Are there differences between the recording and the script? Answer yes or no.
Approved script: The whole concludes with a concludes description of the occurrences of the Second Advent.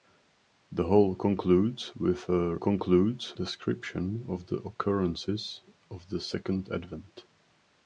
no